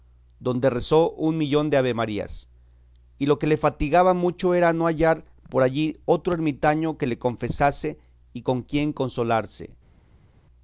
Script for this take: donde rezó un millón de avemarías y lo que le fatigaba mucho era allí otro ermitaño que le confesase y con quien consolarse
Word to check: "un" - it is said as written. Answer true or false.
true